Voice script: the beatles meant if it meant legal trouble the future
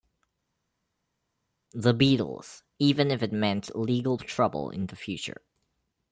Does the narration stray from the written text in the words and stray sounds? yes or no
yes